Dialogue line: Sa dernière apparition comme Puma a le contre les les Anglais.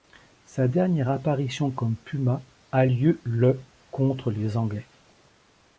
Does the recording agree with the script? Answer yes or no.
no